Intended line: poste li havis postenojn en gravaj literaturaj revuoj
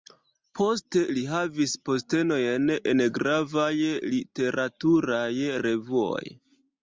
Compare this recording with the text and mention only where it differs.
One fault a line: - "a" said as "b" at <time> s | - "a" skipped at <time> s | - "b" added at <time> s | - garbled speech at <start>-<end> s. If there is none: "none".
none